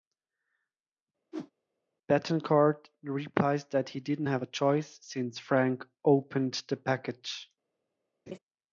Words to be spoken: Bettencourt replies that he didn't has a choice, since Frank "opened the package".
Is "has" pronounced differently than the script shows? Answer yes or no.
yes